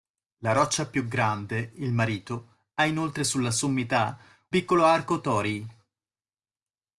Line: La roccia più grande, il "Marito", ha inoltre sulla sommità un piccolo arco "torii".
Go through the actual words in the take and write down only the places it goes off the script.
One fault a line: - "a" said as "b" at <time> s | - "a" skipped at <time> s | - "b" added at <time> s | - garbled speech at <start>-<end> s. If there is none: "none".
- "un" skipped at 4.2 s